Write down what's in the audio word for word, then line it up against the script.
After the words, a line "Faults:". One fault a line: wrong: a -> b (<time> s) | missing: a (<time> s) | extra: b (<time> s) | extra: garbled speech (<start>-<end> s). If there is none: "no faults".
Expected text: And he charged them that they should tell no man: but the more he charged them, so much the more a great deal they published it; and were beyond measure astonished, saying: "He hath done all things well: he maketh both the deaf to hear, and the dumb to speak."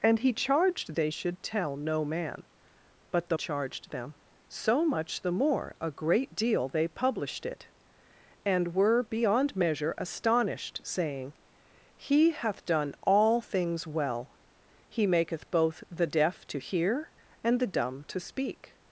And he charged they should tell no man: but the charged them, so much the more a great deal they published it; and were beyond measure astonished, saying: "He hath done all things well: he maketh both the deaf to hear, and the dumb to speak."
Faults:
missing: them that (0.9 s)
missing: more he (3.4 s)